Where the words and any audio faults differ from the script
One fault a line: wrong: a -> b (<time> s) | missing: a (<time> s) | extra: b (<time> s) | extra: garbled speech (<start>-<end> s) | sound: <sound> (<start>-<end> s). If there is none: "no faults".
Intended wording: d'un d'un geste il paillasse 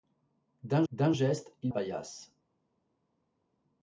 no faults